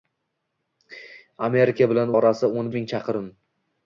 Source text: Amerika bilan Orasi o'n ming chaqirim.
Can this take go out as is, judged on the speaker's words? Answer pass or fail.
pass